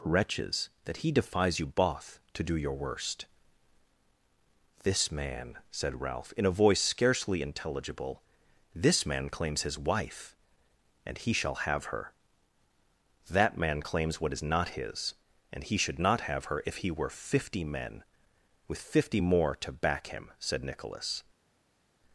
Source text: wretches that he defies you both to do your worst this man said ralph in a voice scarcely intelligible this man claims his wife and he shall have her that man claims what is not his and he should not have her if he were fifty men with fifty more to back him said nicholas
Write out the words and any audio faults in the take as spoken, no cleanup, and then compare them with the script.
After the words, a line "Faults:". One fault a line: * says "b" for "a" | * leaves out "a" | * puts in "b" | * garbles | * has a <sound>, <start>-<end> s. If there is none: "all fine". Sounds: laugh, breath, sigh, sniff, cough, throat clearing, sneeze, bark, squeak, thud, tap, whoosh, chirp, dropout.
wretches that he defies you both to do your worst this man said ralph in a voice scarcely intelligible this man claims his wife and he shall have her that man claims what is not his and he should not have her if he were fifty men with fifty more to back him said nicholas
Faults:
all fine